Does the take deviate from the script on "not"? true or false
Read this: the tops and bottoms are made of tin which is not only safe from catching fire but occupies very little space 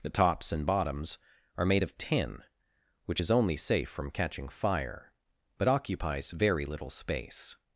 true